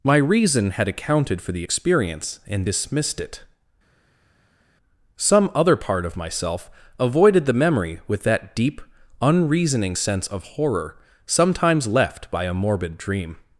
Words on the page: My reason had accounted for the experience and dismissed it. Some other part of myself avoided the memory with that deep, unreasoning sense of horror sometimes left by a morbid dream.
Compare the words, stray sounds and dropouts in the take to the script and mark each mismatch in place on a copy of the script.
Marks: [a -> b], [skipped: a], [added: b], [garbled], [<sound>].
My reason had accounted for the experience and dismissed it. Some other part of myself avoided the memory with that deep, unreasoning sense of horror sometimes left by a morbid dream.